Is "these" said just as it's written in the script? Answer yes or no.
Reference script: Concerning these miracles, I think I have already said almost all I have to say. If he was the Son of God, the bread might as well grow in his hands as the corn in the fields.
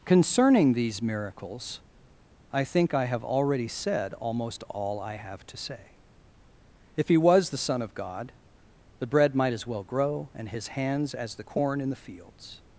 yes